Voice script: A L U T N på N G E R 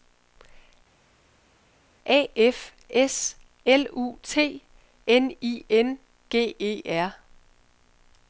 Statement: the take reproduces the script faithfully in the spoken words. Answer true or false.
false